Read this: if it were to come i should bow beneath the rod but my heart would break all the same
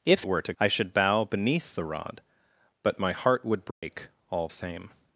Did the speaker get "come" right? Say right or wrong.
wrong